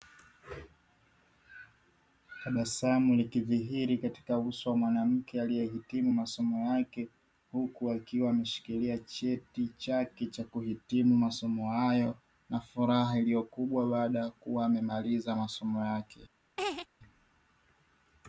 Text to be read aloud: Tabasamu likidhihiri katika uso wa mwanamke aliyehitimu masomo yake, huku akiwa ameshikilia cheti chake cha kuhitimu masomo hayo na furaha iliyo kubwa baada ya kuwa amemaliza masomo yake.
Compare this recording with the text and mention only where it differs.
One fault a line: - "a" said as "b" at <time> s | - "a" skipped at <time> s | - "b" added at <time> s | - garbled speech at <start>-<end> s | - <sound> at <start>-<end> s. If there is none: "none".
- laugh at 16.6-16.9 s